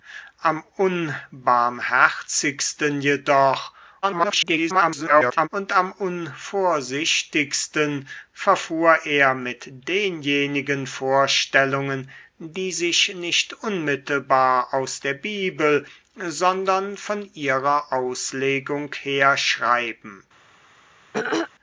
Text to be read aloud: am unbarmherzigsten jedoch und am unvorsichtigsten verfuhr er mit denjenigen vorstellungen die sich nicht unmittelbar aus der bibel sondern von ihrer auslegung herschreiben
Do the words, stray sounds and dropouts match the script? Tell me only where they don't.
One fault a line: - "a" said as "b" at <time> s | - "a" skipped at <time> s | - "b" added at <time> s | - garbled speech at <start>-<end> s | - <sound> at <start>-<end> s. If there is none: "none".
- garbled speech at 4.0-5.5 s
- throat clearing at 21.1-21.5 s